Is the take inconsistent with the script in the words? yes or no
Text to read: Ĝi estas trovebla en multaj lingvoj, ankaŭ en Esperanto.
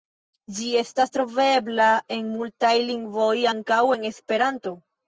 no